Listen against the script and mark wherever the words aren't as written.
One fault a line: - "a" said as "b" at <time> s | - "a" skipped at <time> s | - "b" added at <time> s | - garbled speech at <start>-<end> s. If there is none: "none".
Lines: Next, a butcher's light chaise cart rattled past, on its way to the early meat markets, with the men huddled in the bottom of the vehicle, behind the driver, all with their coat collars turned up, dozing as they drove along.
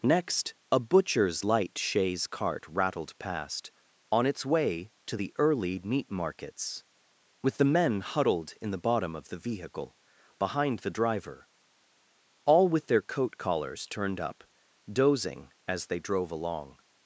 none